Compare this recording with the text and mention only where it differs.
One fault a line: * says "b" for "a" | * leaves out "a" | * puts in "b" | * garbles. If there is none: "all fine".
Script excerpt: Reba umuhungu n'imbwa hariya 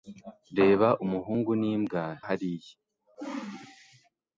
all fine